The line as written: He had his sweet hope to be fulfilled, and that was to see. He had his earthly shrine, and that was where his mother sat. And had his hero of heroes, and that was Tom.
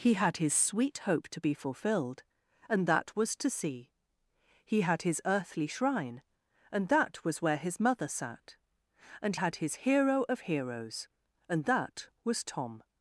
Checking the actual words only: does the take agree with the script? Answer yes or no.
yes